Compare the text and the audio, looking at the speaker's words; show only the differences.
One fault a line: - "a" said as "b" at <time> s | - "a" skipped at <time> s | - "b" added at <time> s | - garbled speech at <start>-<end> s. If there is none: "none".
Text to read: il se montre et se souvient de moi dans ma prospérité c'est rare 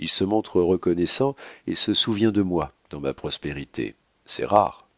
- "reconnaissant" added at 0.6 s